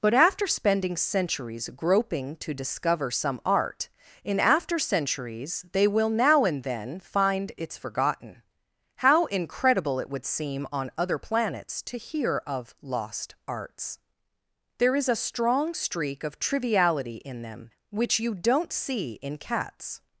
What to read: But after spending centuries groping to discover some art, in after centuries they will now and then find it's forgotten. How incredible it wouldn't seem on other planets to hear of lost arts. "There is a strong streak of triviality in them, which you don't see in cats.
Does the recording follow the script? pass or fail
fail